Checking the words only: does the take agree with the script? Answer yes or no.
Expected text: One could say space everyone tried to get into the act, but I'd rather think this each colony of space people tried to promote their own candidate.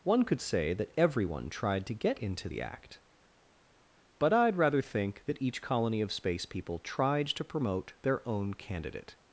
no